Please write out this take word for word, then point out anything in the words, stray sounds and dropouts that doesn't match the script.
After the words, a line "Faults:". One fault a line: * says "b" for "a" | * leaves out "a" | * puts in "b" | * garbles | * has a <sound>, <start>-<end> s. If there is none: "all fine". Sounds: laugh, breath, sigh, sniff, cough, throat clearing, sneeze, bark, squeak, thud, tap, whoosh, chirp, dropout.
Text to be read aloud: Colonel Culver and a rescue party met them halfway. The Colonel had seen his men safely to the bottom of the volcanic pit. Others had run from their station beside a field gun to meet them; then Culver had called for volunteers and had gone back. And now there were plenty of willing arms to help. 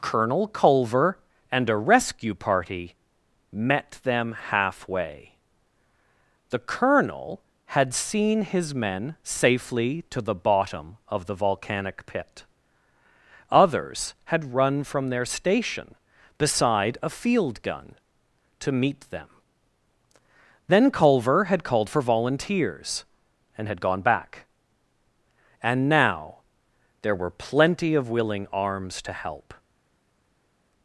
Colonel Culver and a rescue party met them halfway. The Colonel had seen his men safely to the bottom of the volcanic pit. Others had run from their station beside a field gun to meet them; then Culver had called for volunteers and had gone back. And now there were plenty of willing arms to help.
Faults:
all fine